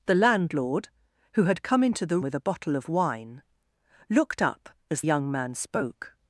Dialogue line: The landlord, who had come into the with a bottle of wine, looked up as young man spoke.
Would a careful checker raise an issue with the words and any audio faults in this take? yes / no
no